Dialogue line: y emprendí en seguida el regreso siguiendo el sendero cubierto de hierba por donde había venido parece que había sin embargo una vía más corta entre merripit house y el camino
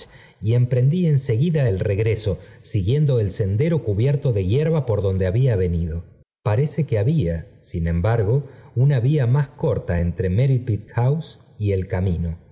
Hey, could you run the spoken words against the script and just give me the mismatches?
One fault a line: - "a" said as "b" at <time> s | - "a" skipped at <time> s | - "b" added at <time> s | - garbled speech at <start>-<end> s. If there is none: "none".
none